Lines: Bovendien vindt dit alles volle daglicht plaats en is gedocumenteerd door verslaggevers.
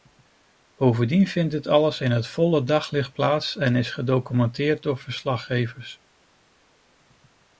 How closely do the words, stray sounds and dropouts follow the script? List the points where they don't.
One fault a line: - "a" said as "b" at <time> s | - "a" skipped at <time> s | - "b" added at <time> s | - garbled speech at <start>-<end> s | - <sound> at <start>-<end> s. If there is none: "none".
- "in het" added at 2.0 s